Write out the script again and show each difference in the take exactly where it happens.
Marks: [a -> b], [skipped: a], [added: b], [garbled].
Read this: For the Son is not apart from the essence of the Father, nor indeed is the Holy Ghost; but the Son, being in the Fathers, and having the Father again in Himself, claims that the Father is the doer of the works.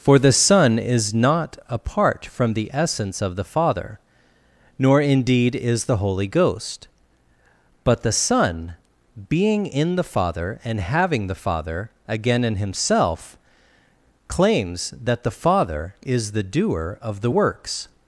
For the Son is not apart from the essence of the Father, nor indeed is the Holy Ghost; but the Son, being in the [Fathers, -> Father] and having the Father again in Himself, claims that the Father is the doer of the works.